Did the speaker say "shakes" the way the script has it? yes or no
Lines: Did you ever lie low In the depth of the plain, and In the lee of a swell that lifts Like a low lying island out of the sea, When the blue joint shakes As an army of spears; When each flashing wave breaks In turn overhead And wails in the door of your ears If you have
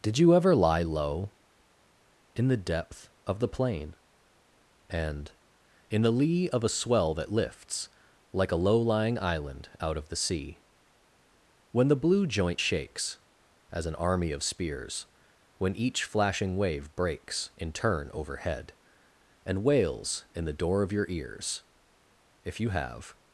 yes